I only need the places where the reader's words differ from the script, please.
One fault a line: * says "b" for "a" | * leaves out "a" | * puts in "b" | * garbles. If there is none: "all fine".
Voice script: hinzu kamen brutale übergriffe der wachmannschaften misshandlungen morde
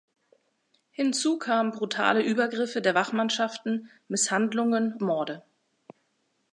all fine